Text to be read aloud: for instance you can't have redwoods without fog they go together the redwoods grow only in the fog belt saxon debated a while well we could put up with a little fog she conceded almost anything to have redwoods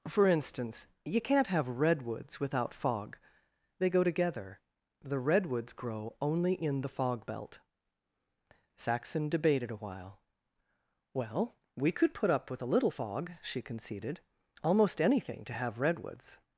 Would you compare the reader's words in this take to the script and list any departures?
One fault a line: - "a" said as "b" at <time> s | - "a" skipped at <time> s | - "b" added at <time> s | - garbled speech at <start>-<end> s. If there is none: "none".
none